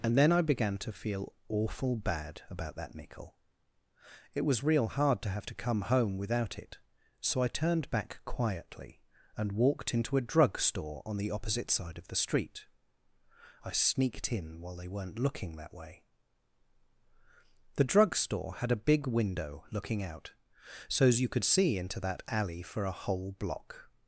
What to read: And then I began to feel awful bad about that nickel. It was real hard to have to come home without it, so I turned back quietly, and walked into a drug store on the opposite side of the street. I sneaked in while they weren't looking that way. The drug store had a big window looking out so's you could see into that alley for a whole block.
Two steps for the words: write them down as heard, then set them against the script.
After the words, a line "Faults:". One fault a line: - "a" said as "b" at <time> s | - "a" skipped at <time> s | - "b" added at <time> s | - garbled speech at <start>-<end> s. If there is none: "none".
And then I began to feel awful bad about that nickel. It was real hard to have to come home without it, so I turned back quietly, and walked into a drug store on the opposite side of the street. I sneaked in while they weren't looking that way. The drug store had a big window looking out so's you could see into that alley for a whole block.
Faults:
none